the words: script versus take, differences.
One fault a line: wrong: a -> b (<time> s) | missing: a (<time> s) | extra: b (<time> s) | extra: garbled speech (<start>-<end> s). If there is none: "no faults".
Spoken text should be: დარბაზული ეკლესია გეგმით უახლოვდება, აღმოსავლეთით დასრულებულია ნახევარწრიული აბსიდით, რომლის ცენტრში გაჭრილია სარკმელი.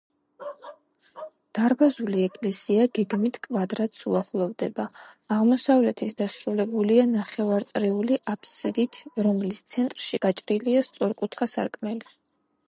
extra: კვადრატს (3.4 s)
extra: სწორკუთხა (10.9 s)